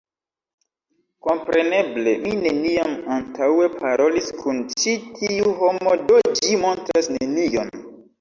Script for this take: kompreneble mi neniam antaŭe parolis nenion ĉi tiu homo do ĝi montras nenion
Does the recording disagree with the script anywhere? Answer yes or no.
yes